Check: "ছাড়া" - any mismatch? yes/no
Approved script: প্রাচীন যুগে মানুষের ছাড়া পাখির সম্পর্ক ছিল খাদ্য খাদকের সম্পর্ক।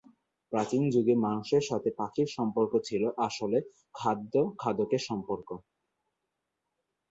yes